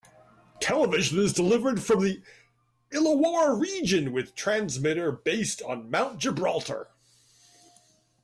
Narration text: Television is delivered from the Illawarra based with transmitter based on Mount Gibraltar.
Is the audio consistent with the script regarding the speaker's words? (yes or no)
no